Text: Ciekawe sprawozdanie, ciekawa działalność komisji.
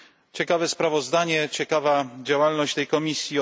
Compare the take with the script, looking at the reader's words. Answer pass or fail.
fail